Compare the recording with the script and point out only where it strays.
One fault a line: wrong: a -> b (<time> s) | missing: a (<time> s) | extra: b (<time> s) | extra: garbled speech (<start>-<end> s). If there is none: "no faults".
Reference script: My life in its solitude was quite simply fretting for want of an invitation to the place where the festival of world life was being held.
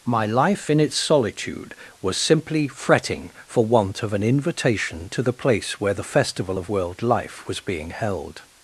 missing: quite (2.2 s)